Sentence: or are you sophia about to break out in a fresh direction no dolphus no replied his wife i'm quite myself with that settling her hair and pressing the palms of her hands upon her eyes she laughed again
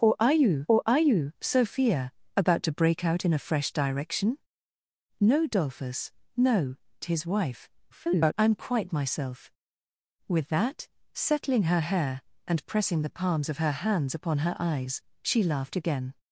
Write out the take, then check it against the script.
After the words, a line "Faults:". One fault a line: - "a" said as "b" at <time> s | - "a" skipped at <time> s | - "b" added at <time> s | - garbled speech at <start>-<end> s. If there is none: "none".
or are you or are you sophia about to break out in a fresh direction no dolphus no his wife [garbled] i'm quite myself with that settling her hair and pressing the palms of her hands upon her eyes she laughed again
Faults:
- "or are you" added at 0.7 s
- "replied" skipped at 6.7 s
- garbled speech at 7.9-8.3 s